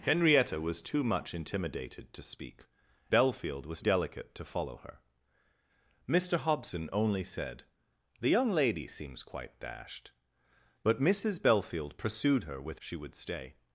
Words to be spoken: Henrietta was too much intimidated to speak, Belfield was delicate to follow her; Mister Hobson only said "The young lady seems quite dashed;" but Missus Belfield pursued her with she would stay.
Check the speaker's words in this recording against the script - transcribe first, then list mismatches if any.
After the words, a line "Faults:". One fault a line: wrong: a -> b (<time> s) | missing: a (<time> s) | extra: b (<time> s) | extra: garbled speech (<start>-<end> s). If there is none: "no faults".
Henrietta was too much intimidated to speak, Belfield was delicate to follow her; Mister Hobson only said "The young lady seems quite dashed;" but Missus Belfield pursued her with she would stay.
Faults:
no faults